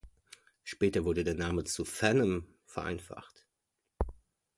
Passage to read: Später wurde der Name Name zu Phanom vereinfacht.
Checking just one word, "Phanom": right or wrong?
right